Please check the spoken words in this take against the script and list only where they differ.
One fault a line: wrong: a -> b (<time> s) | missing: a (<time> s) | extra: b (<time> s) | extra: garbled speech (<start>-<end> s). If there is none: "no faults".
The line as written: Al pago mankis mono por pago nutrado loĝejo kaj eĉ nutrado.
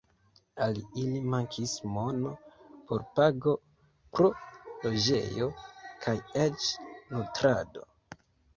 wrong: pago -> ili (1.0 s)
wrong: nutrado -> pro (4.2 s)